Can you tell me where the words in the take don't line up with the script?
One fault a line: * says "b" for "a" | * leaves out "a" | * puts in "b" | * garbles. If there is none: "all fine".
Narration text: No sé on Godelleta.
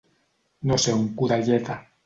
all fine